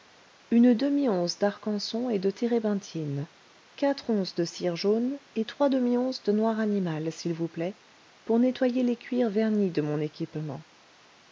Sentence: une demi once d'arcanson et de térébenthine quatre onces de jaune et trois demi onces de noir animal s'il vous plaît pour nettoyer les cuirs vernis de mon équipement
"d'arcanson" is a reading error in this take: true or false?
false